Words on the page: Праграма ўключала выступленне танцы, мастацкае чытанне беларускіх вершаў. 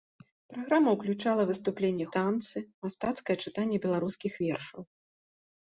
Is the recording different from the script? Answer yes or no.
no